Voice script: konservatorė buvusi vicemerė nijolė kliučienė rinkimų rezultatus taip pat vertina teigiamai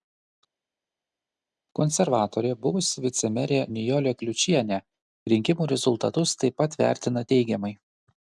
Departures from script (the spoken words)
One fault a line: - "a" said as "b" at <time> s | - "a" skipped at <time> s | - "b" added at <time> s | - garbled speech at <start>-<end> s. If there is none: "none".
none